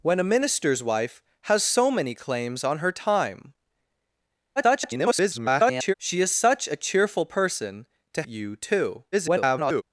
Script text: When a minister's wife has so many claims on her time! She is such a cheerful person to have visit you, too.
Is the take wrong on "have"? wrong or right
wrong